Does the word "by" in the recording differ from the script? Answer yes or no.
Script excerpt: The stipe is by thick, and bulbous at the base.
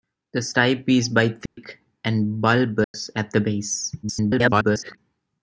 no